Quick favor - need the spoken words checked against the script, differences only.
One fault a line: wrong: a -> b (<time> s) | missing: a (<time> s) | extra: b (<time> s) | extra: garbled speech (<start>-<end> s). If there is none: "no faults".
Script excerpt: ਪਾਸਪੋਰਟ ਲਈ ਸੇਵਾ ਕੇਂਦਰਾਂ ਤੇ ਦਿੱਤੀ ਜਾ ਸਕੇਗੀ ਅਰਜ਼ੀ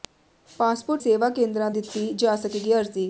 missing: ਲਈ (1.0 s)
missing: ਤੇ (1.7 s)